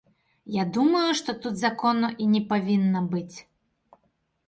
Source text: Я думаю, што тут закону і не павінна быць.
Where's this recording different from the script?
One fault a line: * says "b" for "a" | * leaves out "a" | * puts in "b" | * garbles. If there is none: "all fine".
all fine